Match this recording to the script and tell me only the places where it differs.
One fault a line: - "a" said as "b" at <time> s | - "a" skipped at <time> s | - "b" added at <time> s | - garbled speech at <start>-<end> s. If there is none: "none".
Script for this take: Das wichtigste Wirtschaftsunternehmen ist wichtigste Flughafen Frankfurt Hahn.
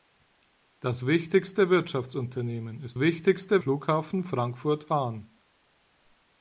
none